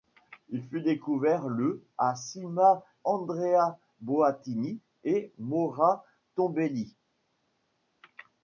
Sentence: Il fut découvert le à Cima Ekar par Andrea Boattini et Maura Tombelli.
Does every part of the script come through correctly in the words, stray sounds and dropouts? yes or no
no